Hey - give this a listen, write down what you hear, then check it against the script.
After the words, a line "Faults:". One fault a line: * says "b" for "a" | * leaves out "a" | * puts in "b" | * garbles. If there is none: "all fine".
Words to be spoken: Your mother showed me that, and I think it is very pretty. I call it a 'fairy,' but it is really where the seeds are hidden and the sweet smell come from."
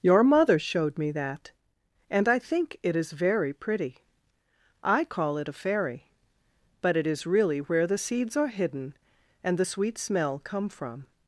Your mother showed me that, and I think it is very pretty. I call it a 'fairy,' but it is really where the seeds are hidden and the sweet smell come from."
Faults:
all fine